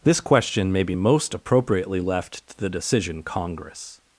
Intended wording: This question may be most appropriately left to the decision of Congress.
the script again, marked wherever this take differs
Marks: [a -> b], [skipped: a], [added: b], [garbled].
This question may be most appropriately left to the decision [skipped: of] Congress.